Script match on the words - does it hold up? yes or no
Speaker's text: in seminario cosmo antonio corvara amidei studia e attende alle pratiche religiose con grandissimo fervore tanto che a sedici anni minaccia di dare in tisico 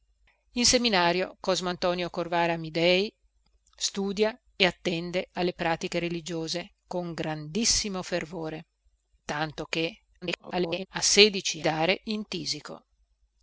no